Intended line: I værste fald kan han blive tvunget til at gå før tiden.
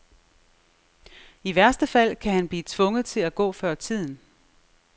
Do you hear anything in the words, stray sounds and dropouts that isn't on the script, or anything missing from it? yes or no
no